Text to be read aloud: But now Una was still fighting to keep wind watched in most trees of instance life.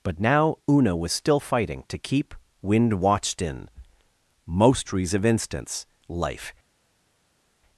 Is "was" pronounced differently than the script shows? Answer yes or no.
no